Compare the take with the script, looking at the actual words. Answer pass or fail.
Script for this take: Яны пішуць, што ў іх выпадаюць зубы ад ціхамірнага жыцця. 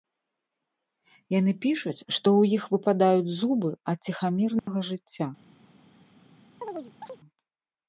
pass